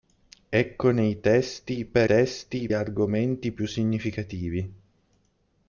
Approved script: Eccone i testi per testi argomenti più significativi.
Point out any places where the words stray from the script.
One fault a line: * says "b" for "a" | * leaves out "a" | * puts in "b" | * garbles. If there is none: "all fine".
all fine